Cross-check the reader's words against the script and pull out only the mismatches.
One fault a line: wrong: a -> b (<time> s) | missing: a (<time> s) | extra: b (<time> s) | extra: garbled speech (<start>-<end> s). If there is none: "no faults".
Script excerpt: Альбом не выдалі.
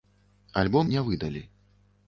no faults